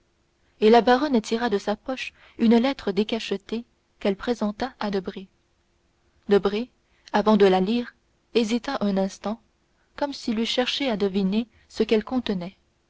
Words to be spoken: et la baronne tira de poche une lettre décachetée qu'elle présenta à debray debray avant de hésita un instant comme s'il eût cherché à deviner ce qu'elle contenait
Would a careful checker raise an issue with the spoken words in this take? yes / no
yes